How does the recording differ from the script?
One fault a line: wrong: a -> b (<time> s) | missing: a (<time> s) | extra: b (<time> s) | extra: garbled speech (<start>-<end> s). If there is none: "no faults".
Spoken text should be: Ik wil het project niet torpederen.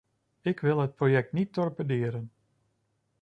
no faults